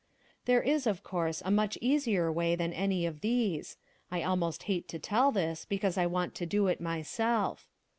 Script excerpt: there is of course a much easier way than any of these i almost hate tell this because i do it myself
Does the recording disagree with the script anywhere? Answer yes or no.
yes